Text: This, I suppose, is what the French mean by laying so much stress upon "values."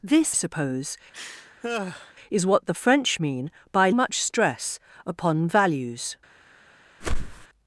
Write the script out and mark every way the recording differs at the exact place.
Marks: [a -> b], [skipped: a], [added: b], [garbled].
This, [skipped: I] suppose, is what the French mean by [skipped: laying so] much stress upon "values."